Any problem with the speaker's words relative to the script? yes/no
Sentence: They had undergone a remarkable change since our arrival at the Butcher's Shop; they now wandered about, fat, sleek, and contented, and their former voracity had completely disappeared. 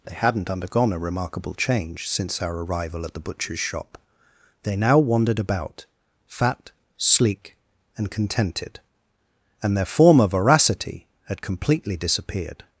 yes